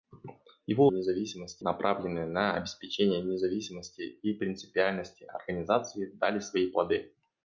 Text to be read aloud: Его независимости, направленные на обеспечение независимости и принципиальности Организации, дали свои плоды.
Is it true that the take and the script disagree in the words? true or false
false